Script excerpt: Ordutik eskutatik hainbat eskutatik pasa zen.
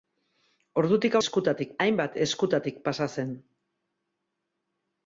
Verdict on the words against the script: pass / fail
pass